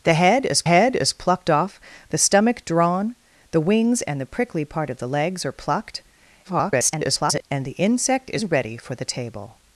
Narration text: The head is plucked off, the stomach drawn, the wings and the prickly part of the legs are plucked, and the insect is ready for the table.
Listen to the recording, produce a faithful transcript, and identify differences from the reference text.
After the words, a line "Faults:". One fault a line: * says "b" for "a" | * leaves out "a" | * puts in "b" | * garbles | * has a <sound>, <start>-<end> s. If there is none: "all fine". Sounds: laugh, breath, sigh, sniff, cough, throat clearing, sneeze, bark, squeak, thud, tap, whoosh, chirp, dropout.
The head is head is plucked off, the stomach drawn, the wings and the prickly part of the legs are plucked, [garbled] and the insect is ready for the table.
Faults:
* puts in "head is"
* garbles